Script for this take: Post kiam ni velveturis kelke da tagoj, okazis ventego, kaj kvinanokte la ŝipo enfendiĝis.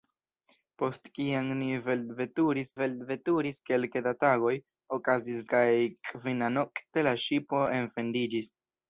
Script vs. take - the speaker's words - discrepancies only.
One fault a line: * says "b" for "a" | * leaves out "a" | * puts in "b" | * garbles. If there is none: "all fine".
* puts in "velveturis"
* leaves out "ventego"